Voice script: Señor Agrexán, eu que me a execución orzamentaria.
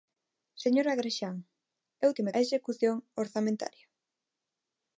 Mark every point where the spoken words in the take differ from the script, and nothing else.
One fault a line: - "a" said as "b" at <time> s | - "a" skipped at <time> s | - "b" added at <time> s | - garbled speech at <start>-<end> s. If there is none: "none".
none